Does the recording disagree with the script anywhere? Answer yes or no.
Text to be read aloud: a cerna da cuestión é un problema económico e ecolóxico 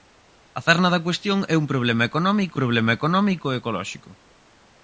yes